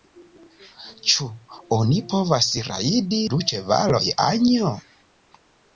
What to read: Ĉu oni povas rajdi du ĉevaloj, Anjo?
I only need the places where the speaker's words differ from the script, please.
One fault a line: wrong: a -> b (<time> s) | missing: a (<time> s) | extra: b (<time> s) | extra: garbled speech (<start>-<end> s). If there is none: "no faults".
no faults